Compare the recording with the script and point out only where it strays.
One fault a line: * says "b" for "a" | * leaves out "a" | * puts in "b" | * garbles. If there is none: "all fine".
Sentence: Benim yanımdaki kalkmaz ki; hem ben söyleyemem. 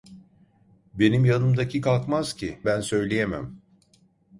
* leaves out "hem"